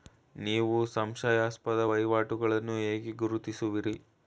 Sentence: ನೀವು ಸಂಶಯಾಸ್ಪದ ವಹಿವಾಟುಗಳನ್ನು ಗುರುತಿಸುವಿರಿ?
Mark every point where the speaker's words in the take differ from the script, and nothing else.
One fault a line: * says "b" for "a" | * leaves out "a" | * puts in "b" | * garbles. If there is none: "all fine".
* puts in "ಹೇಗೆ"